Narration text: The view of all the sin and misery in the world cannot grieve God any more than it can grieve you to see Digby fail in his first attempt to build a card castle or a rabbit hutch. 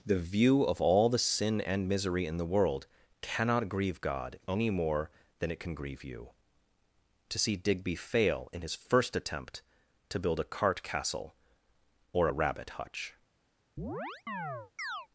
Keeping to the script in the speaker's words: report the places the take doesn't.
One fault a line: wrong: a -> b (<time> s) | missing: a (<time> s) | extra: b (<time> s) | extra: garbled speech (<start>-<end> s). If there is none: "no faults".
wrong: card -> cart (10.5 s)